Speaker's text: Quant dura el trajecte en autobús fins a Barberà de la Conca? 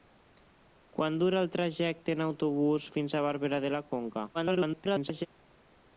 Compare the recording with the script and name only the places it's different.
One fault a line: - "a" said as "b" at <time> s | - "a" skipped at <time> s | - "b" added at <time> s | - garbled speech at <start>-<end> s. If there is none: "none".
- garbled speech at 4.3-5.3 s